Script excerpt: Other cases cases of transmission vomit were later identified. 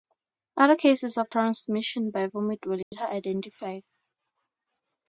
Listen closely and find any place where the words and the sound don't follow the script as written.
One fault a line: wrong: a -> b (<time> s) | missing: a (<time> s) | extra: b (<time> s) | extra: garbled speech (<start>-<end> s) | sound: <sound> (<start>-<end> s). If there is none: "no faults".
missing: cases (1.2 s)
extra: by (2.1 s)
sound: dropout (2.8-2.9 s)